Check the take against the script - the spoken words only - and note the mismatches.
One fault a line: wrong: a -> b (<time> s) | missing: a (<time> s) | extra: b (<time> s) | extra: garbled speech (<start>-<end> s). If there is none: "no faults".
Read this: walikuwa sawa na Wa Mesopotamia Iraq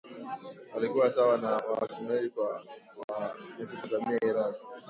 extra: Wasumeri (1.6 s)